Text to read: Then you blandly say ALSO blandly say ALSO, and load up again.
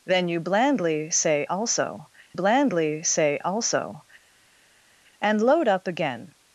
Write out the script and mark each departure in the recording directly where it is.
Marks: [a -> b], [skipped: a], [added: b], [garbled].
Then you blandly say ALSO blandly say ALSO, and load up again.